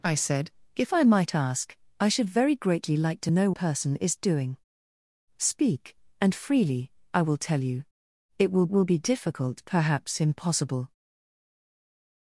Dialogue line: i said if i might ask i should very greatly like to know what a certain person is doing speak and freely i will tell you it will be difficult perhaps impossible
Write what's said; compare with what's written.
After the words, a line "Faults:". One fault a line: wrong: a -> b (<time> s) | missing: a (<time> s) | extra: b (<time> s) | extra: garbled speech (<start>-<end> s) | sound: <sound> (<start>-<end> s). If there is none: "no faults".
i said if i might ask i should very greatly like to know person is doing speak and freely i will tell you it will will be difficult perhaps impossible
Faults:
missing: what a certain (3.5 s)
extra: will (8.7 s)